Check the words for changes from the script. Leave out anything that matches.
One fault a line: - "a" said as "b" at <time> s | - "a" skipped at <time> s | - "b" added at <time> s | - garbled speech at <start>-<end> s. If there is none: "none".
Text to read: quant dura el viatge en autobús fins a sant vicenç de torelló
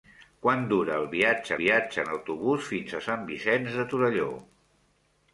- "viatge" added at 1.6 s